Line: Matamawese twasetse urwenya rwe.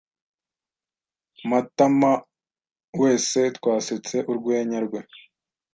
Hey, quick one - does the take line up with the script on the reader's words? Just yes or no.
yes